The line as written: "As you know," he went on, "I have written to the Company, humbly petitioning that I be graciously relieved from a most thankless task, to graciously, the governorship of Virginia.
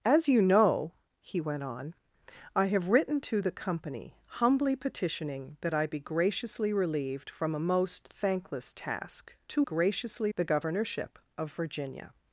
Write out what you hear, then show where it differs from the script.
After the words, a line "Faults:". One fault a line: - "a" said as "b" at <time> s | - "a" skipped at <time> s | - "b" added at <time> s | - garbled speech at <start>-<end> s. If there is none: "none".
"As you know," he went on, "I have written to the Company, humbly petitioning that I be graciously relieved from a most thankless task, to graciously, the governorship of Virginia.
Faults:
none